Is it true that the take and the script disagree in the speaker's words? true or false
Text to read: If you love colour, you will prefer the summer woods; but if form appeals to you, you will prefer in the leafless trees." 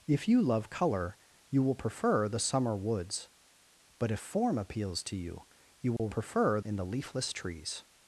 false